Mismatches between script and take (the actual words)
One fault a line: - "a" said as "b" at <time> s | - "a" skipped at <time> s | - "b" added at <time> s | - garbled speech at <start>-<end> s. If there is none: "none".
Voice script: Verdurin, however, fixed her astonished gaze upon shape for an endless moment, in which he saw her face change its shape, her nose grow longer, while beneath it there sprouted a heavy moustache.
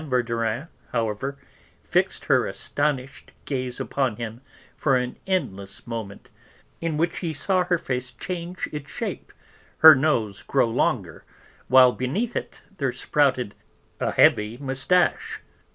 - "shape" said as "him" at 4.2 s